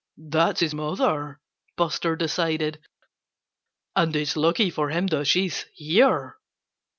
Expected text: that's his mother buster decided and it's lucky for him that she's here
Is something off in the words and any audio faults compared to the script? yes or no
no